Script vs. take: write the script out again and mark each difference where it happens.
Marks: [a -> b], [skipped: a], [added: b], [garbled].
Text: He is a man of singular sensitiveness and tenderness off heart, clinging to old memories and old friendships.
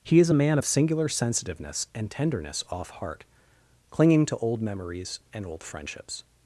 He is a man of singular sensitiveness and tenderness off heart, clinging to old memories and old friendships.